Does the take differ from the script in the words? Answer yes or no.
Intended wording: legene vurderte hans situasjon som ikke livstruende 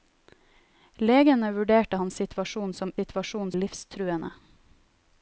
yes